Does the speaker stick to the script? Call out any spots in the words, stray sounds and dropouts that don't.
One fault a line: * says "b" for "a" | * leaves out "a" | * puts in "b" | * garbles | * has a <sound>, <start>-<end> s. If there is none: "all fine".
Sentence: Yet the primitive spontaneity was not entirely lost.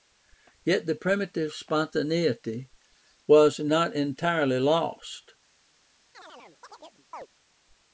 * has a chirp, 6.1-7.3 s